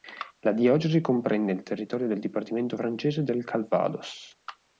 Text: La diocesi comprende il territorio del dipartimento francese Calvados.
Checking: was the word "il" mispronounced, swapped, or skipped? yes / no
no